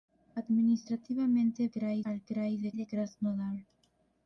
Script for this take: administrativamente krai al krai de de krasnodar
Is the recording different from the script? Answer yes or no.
no